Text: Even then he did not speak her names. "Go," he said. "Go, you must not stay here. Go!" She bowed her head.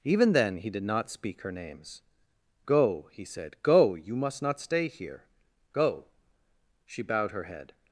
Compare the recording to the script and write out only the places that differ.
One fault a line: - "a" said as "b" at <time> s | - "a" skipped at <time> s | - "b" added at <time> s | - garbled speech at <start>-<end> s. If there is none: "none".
none